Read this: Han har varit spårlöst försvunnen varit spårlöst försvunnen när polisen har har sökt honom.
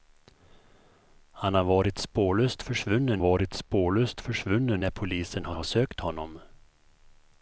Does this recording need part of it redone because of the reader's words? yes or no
no